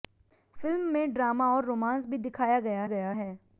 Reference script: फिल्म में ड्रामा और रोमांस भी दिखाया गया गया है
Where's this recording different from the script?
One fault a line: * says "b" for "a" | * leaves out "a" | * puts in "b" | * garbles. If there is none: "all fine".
all fine